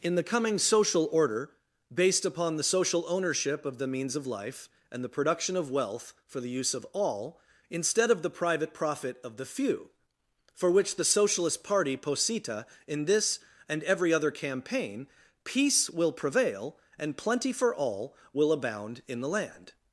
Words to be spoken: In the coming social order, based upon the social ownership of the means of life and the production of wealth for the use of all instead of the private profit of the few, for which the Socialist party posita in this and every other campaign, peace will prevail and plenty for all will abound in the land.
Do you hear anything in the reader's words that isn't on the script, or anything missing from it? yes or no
no